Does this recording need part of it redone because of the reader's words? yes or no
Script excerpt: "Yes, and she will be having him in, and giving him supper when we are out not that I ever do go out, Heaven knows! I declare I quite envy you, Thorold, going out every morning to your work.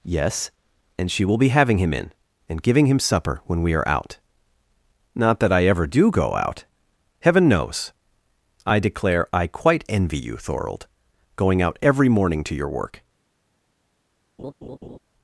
no